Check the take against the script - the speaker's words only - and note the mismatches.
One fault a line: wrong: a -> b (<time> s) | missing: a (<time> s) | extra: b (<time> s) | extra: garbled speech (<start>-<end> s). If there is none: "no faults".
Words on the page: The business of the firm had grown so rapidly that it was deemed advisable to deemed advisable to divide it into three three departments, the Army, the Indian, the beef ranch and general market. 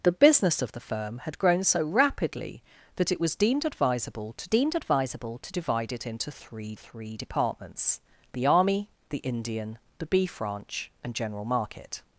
no faults